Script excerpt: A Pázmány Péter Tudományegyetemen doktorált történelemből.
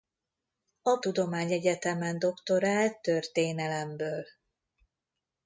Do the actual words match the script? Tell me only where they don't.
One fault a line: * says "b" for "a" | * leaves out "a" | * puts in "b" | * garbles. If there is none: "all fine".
* leaves out "Pázmány Péter"